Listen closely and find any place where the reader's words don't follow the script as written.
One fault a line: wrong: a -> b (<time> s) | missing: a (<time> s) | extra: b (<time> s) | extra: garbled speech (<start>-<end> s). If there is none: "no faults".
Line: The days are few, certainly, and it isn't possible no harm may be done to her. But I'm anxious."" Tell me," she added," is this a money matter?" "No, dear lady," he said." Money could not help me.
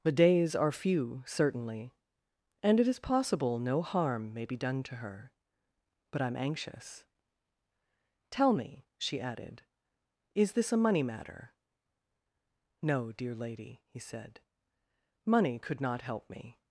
wrong: isn't -> is (2.9 s)